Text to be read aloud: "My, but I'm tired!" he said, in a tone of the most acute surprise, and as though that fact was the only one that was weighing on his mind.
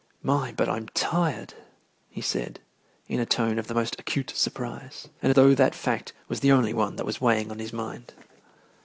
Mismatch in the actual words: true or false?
true